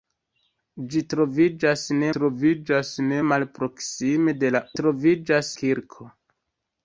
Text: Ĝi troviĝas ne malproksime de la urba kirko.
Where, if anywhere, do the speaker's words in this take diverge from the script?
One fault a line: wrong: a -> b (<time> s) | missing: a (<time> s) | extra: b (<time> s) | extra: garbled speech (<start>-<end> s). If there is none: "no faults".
extra: troviĝas ne (2.2 s)
wrong: urba -> troviĝas (4.8 s)